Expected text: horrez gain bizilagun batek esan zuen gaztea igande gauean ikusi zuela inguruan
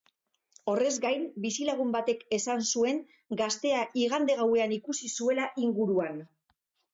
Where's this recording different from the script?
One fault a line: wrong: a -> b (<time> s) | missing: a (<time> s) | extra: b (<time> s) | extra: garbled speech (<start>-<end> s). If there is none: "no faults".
no faults